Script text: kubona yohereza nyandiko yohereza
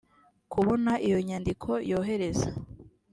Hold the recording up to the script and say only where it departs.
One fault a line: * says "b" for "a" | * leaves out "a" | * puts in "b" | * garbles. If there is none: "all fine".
* says "iyo" for "yohereza"